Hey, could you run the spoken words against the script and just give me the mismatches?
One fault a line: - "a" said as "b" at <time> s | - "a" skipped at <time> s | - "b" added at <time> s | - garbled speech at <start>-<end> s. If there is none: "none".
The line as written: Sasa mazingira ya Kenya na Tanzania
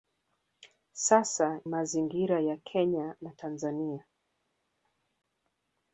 none